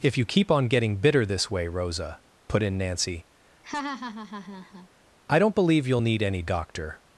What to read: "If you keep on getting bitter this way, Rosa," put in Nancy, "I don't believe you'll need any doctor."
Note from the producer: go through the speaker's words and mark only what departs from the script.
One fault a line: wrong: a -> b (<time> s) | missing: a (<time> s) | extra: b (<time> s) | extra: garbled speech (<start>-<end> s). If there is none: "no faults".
no faults